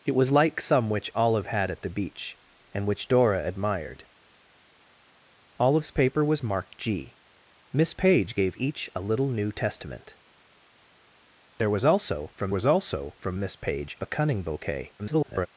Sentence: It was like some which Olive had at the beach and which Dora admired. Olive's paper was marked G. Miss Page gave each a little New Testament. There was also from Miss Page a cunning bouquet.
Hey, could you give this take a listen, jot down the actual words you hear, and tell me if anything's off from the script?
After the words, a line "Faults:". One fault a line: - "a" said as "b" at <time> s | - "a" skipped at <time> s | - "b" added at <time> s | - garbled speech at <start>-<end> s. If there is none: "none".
It was like some which Olive had at the beach and which Dora admired. Olive's paper was marked G. Miss Page gave each a little New Testament. There was also from was also from Miss Page a cunning bouquet. [garbled]
Faults:
- "was also from" added at 12.5 s
- garbled speech at 15.0-15.5 s